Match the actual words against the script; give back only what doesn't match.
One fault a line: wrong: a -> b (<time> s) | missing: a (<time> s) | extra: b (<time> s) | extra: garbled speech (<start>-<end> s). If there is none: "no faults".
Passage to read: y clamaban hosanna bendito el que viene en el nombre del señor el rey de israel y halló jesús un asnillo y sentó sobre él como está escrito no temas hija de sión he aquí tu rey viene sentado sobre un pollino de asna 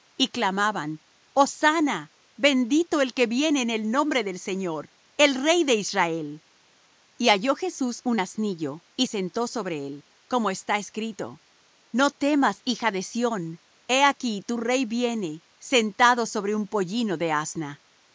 no faults